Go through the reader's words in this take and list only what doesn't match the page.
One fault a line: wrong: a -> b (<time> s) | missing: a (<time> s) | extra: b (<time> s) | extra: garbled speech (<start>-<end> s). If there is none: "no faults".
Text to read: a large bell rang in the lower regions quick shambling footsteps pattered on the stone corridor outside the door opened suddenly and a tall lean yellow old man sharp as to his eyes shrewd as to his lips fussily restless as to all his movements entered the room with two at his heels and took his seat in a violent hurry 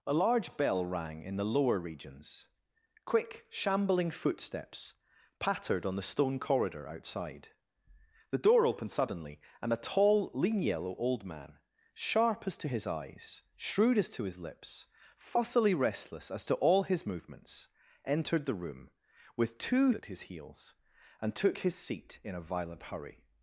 no faults